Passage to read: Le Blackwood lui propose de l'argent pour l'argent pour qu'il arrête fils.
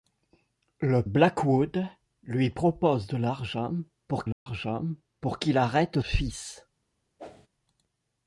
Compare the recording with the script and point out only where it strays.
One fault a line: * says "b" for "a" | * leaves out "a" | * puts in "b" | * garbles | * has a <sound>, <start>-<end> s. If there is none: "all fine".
* has a dropout, 4.3-4.5 s
* has a whoosh, 7.2-7.5 s